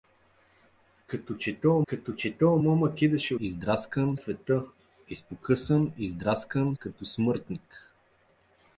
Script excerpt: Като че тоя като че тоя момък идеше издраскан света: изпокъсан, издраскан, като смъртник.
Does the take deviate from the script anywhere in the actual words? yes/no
no